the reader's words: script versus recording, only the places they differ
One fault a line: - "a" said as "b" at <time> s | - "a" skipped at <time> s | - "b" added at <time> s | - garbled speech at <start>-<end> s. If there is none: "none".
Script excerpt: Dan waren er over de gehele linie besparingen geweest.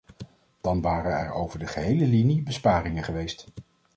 none